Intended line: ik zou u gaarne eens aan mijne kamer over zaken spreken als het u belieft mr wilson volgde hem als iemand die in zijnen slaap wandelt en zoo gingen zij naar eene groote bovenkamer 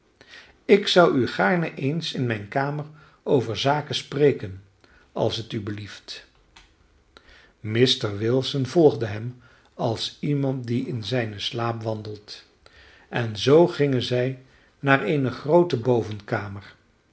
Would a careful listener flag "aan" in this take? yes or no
yes